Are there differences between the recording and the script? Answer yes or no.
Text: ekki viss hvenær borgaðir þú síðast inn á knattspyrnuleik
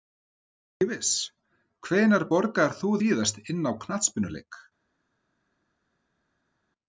no